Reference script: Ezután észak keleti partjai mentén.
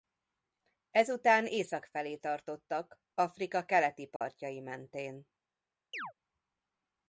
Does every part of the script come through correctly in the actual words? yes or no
no